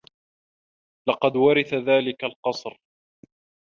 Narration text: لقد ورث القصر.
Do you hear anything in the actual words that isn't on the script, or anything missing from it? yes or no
yes